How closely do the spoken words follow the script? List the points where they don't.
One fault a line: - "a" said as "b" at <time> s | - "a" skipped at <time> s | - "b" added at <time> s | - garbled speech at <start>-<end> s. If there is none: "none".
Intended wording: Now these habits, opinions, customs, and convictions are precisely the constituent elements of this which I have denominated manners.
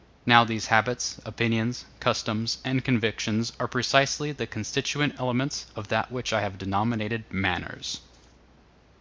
- "this" said as "that" at 5.9 s